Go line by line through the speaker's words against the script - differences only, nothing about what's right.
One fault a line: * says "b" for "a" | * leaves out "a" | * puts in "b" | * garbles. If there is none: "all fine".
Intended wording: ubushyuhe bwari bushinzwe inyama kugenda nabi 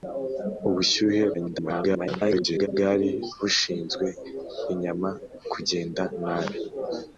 * garbles